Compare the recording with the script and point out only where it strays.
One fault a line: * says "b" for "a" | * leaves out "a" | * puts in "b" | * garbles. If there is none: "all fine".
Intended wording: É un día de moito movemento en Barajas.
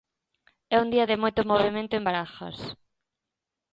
all fine